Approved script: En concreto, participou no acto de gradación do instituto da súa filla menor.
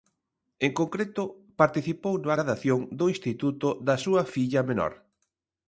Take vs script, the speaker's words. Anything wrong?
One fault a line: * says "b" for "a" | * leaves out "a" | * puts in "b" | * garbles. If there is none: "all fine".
* leaves out "acto de"